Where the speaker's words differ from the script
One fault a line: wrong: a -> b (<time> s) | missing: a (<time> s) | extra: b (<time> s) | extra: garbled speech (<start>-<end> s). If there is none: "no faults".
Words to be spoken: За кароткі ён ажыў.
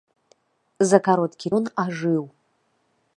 no faults